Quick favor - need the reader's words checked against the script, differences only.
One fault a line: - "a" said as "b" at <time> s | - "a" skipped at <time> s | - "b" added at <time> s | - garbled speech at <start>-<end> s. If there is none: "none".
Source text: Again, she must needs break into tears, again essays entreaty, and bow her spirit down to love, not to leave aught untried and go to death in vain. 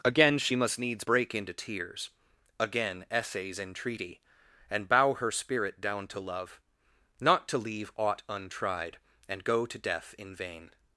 none